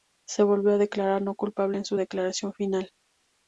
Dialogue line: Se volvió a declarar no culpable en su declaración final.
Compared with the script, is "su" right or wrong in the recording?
right